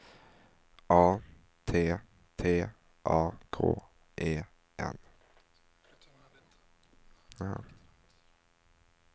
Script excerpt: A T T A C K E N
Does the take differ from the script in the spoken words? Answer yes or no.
yes